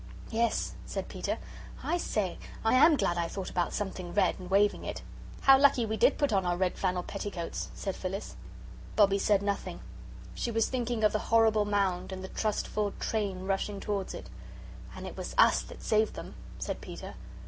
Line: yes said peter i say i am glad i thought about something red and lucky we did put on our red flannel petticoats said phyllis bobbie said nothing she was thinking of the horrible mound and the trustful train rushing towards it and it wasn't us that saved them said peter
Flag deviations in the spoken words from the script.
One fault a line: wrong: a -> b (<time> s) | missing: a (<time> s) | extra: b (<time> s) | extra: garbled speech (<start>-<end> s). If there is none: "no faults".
extra: waving it how (4.5 s)
wrong: wasn't -> was (15.2 s)